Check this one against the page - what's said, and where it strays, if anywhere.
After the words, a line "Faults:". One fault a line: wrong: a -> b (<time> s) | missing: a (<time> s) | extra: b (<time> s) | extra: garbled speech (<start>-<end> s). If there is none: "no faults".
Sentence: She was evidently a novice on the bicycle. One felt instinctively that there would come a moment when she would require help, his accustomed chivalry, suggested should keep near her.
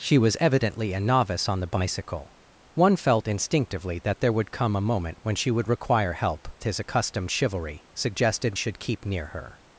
She was evidently a novice on the bicycle. One felt instinctively that there would come a moment when she would require help, his accustomed chivalry, suggested should keep near her.
Faults:
no faults